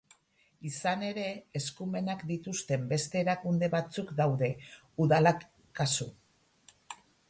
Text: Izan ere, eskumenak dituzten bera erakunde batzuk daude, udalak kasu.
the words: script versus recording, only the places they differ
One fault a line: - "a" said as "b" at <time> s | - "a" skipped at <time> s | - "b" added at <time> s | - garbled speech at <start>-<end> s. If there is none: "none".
- "bera" said as "beste" at 3.0 s